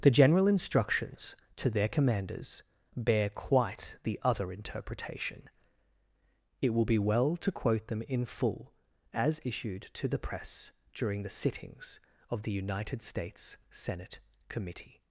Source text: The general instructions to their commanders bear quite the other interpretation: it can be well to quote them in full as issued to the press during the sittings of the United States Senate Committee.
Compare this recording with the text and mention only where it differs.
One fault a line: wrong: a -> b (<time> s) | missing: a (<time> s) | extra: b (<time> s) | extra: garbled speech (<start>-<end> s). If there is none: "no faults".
wrong: can -> will (6.7 s)